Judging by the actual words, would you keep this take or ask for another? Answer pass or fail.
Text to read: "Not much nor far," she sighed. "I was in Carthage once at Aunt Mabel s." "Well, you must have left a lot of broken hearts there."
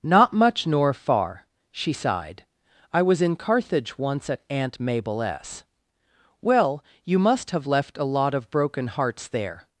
pass